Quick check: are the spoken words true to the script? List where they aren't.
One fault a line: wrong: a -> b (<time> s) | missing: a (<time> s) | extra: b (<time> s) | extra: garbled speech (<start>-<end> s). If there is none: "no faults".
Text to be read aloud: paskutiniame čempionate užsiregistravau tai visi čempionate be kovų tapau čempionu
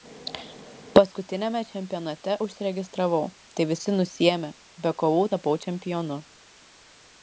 wrong: čempionate -> nusiėmė (4.0 s)